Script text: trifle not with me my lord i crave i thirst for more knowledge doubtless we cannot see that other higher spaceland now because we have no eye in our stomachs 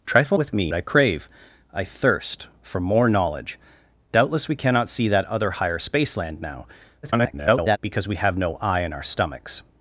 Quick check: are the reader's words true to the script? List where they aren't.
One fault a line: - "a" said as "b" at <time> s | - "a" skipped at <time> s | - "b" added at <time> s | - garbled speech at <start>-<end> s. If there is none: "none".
- "not" skipped at 0.4 s
- "my lord" skipped at 0.7 s
- garbled speech at 7.0-7.8 s